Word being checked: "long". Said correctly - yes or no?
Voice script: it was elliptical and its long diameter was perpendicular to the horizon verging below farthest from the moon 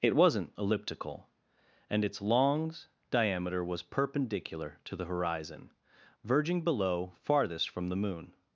no